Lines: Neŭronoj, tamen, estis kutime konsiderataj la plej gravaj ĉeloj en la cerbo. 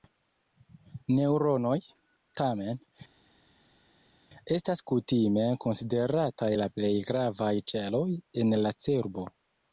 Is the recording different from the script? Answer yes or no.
yes